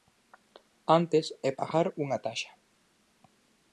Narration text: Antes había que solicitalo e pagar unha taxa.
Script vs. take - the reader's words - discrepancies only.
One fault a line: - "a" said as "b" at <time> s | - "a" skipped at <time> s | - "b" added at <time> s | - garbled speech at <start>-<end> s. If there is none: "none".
- "había que solicitalo" skipped at 1.2 s